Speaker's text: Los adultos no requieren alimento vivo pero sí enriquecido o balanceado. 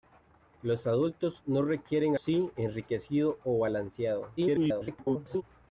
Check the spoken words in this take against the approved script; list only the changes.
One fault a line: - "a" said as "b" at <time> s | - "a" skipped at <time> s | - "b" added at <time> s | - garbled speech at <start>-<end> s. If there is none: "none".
- "alimento vivo pero" skipped at 2.2 s
- garbled speech at 4.4-5.4 s